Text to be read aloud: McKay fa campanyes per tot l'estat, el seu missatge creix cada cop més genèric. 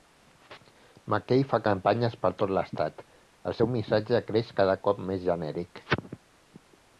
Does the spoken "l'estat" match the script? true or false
true